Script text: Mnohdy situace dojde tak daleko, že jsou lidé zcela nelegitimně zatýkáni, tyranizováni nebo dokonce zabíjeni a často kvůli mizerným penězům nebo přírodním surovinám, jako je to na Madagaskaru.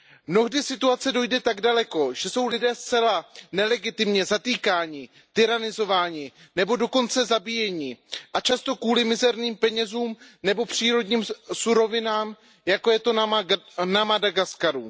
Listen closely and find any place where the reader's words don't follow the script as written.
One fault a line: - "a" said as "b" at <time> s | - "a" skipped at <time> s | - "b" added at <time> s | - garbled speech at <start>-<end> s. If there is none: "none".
none